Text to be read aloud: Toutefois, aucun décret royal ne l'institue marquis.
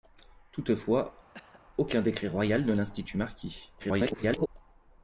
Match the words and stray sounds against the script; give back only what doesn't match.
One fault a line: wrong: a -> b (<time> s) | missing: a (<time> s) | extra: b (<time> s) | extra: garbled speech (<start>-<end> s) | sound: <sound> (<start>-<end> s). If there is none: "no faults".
sound: cough (1.3-1.6 s)
extra: garbled speech (3.8-4.5 s)